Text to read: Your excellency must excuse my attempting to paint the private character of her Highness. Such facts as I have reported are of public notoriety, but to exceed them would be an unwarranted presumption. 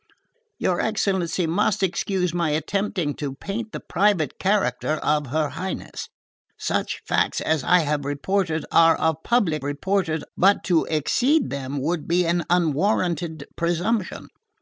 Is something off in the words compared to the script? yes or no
yes